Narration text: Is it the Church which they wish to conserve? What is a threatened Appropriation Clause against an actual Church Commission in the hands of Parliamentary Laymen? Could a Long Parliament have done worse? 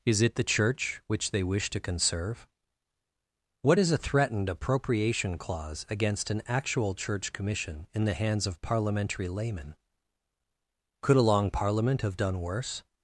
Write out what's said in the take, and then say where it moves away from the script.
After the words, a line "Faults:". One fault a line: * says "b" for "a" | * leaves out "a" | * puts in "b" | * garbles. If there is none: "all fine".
Is it the Church which they wish to conserve? What is a threatened Appropriation Clause against an actual Church Commission in the hands of Parliamentary Laymen? Could a Long Parliament have done worse?
Faults:
all fine